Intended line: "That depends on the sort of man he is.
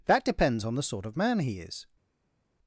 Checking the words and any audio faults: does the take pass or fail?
pass